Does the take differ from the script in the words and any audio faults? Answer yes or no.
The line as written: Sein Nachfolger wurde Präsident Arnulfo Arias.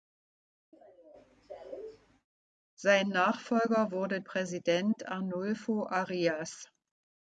yes